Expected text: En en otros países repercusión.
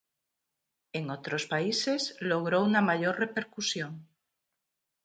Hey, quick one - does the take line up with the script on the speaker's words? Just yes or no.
no